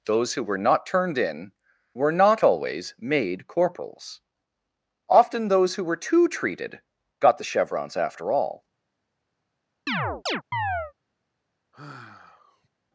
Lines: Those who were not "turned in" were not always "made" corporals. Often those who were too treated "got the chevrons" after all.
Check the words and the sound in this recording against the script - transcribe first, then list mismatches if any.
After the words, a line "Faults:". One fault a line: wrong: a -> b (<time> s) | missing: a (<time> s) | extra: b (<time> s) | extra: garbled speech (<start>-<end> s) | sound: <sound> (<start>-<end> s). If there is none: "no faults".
Those who were not "turned in" were not always "made" corporals. Often those who were too treated "got the chevrons" after all.
Faults:
sound: chirp (9.9-10.9 s)
sound: sigh (11.7-12.7 s)